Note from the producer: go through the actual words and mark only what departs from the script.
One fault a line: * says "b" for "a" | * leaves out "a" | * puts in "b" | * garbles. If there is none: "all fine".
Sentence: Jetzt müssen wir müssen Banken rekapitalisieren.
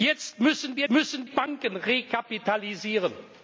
all fine